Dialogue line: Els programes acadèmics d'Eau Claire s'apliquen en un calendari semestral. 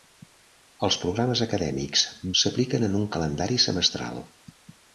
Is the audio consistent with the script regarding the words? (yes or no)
no